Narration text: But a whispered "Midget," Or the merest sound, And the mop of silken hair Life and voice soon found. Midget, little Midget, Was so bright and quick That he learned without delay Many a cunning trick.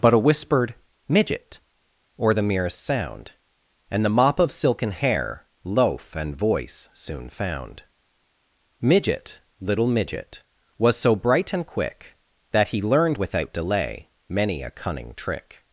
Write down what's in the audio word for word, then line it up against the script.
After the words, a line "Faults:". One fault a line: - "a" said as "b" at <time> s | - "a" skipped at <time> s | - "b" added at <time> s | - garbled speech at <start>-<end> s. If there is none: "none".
But a whispered "Midget," Or the merest sound, And the mop of silken hair Loaf and voice soon found. Midget, little Midget, Was so bright and quick That he learned without delay Many a cunning trick.
Faults:
- "Life" said as "Loaf" at 5.6 s